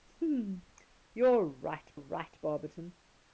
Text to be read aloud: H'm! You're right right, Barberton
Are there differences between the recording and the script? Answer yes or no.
no